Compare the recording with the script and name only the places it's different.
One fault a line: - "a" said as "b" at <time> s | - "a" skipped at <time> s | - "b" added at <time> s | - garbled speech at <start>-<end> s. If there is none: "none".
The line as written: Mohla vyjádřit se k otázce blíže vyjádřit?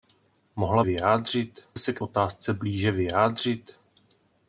none